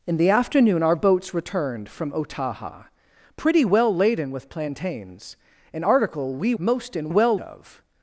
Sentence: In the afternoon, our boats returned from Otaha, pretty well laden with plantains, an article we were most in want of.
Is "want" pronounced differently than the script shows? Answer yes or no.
yes